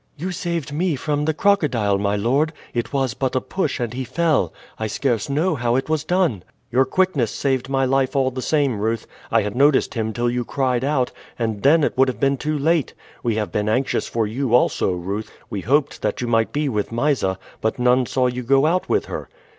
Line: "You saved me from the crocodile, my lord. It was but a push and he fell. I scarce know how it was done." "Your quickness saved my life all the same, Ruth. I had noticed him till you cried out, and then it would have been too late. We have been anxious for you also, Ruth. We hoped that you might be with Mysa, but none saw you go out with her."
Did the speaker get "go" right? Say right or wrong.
right